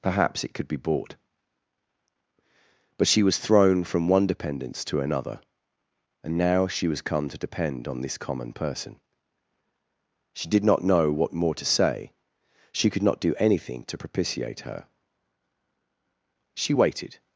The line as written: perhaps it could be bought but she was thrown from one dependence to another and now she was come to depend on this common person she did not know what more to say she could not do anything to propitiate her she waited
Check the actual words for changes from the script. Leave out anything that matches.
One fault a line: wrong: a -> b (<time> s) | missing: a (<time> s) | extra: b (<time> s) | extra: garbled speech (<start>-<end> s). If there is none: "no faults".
no faults